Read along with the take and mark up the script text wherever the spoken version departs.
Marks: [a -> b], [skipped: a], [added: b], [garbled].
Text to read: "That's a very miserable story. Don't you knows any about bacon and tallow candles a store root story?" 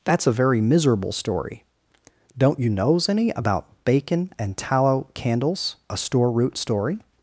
"That's a very miserable story. Don't you knows any about bacon and tallow candles a store root story?"